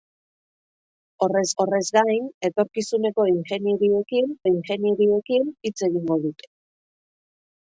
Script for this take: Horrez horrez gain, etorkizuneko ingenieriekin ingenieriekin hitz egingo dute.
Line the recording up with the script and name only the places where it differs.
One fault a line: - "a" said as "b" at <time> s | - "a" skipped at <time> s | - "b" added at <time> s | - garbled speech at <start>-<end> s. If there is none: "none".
none